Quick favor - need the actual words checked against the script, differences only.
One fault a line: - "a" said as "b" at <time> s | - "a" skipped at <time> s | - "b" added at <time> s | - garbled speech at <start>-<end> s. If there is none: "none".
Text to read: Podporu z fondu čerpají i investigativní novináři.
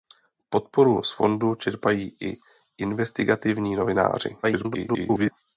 - garbled speech at 4.4-5.3 s